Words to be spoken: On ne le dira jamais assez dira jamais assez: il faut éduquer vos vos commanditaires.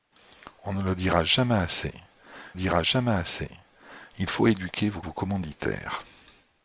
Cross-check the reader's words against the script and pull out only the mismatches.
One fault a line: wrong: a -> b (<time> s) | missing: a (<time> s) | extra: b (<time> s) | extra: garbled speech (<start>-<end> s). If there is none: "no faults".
no faults